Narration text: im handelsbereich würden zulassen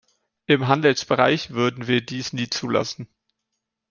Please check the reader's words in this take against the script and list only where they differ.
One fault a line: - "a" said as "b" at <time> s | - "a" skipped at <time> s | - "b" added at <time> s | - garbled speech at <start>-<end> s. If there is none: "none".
- "wir dies nie" added at 1.9 s